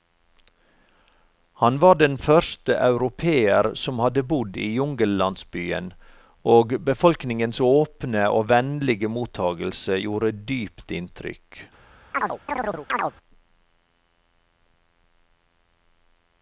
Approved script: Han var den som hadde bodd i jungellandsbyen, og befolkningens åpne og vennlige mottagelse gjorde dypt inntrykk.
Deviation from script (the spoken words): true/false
true